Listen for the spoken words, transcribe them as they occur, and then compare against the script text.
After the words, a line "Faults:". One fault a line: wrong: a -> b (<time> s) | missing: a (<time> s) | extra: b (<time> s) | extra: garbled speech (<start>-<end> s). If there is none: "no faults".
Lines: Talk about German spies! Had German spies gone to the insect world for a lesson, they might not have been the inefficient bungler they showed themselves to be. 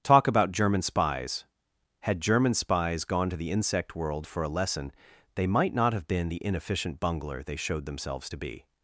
Talk about German spies! Had German spies gone to the insect world for a lesson, they might not have been the inefficient bungler they showed themselves to be.
Faults:
no faults